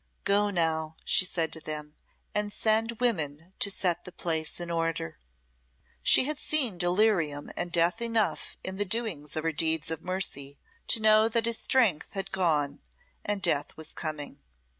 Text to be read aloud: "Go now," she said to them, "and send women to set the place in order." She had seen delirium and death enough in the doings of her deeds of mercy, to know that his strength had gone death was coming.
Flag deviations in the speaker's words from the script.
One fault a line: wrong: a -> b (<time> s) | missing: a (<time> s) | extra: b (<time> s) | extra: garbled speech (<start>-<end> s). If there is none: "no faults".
extra: and (13.2 s)